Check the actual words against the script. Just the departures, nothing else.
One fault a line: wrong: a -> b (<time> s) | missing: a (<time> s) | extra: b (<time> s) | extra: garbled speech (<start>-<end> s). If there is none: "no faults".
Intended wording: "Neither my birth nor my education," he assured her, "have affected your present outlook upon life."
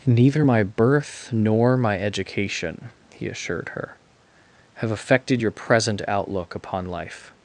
no faults